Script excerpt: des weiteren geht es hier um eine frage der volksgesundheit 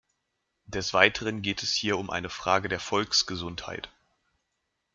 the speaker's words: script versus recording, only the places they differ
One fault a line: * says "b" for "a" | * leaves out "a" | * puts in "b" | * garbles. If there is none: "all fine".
all fine